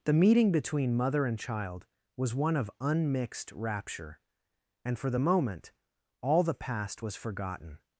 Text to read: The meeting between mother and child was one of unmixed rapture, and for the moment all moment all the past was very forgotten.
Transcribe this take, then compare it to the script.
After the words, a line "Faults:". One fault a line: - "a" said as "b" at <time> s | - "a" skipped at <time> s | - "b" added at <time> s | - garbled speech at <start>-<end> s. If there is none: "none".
The meeting between mother and child was one of unmixed rapture, and for the moment all the past was forgotten.
Faults:
- "moment all" skipped at 6.4 s
- "very" skipped at 7.2 s